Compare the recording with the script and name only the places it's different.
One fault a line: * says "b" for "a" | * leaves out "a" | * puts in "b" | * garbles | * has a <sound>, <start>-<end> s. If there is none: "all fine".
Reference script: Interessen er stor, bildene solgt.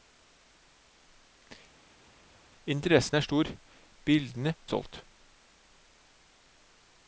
all fine